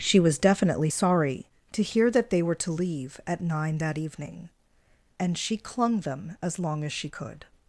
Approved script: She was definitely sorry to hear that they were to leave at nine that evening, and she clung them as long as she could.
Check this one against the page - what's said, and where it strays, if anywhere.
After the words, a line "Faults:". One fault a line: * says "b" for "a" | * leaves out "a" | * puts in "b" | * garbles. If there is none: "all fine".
She was definitely sorry to hear that they were to leave at nine that evening, and she clung them as long as she could.
Faults:
all fine